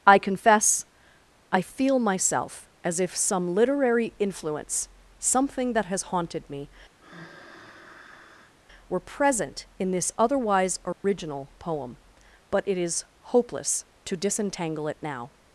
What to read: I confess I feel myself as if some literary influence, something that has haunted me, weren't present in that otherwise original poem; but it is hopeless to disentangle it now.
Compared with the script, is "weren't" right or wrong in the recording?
wrong